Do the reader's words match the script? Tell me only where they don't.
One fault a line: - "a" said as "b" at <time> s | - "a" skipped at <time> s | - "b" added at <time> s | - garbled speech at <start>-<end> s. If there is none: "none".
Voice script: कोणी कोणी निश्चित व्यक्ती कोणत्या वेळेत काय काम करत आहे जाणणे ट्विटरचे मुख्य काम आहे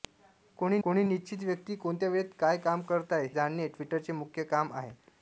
none